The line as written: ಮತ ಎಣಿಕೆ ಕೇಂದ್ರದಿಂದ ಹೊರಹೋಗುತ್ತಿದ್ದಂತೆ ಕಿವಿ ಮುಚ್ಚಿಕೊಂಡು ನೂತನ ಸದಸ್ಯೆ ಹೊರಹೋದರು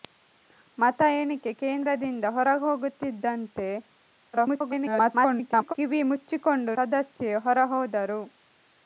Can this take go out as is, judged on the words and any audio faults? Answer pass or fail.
fail